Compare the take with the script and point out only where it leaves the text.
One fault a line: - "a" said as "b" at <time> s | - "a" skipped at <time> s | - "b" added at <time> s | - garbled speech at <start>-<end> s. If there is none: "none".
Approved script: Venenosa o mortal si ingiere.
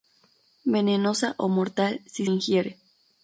none